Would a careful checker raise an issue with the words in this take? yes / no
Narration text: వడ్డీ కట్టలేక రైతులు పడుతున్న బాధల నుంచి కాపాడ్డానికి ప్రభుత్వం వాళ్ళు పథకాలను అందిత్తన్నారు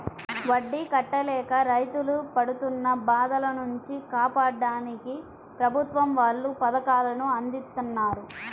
no